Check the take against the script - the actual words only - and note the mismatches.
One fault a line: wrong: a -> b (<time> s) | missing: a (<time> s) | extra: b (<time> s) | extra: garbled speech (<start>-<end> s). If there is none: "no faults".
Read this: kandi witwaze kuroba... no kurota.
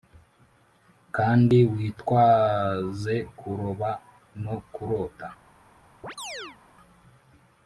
no faults